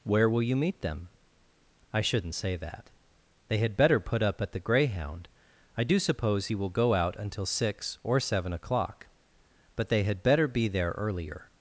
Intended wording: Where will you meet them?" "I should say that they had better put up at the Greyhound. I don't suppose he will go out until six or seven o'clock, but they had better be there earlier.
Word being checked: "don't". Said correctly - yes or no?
no